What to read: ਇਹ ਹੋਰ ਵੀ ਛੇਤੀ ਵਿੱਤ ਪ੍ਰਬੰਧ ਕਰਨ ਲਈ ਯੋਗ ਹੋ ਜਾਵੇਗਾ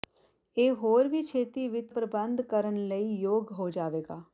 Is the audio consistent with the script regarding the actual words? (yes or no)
yes